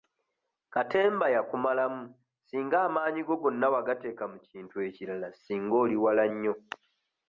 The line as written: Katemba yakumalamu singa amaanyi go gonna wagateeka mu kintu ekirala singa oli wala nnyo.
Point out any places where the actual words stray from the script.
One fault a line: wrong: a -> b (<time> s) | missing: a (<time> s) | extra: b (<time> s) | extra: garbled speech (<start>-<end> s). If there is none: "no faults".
no faults